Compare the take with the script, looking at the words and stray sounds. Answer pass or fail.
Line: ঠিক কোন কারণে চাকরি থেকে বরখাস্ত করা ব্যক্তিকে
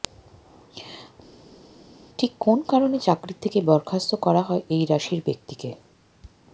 fail